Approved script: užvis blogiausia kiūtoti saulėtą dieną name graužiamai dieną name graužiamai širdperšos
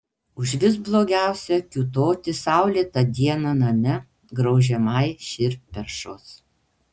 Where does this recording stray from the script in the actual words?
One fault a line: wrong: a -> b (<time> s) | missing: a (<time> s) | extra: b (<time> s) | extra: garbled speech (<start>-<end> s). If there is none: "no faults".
missing: dieną name graužiamai (5.0 s)